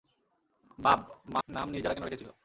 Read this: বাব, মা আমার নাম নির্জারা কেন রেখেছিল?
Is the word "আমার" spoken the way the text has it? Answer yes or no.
no